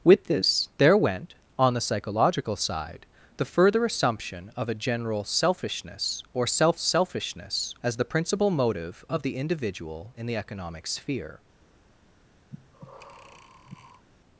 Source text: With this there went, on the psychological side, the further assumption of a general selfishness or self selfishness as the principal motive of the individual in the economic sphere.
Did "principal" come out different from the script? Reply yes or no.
no